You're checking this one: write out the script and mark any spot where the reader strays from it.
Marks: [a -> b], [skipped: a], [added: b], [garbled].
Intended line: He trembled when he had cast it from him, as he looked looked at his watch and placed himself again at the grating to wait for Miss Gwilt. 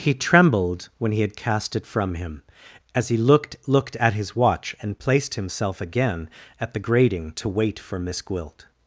He trembled when he had cast it from him, as he looked looked at his watch and placed himself again at the grating to wait for Miss Gwilt.